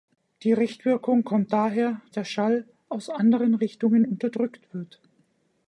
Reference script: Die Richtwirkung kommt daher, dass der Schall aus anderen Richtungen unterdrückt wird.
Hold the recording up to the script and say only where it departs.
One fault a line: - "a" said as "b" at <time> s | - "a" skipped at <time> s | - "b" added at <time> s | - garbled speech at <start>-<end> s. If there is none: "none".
- "dass" skipped at 2.0 s